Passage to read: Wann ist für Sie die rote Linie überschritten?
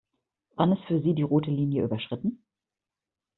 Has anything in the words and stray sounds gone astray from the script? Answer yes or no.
no